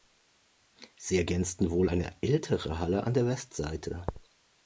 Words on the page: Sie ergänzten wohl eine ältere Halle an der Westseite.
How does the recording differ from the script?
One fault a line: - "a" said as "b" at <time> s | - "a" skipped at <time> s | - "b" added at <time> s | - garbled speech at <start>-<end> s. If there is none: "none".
none